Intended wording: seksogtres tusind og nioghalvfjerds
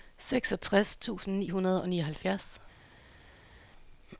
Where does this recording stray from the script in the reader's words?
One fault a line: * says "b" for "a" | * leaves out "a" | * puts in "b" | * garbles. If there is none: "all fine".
* puts in "ni hundrede"